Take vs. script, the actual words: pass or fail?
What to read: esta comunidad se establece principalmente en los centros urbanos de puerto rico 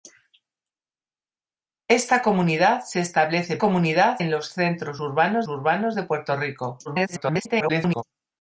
fail